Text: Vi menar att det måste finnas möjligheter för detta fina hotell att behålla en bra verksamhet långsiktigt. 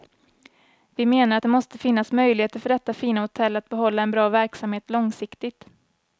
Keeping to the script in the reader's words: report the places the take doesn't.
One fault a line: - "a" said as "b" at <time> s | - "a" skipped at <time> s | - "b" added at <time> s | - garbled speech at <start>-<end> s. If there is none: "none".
none